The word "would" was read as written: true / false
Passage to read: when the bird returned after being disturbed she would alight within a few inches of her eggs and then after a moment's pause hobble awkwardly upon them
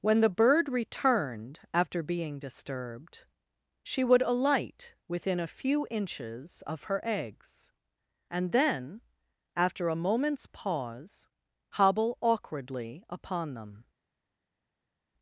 true